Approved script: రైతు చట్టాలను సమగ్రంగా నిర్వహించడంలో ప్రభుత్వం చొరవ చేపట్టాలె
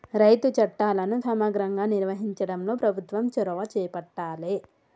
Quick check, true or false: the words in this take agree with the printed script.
true